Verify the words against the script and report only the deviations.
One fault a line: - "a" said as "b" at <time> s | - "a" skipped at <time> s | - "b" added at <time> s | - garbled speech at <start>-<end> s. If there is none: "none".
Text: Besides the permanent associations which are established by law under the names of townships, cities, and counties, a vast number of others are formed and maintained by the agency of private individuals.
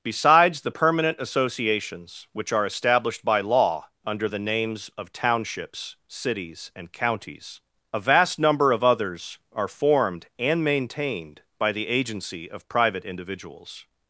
none